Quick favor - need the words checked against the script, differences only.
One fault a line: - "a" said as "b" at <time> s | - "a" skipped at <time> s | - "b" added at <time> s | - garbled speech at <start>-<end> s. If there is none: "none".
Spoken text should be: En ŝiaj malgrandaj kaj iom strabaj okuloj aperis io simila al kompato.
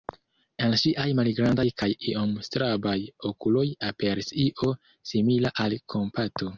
none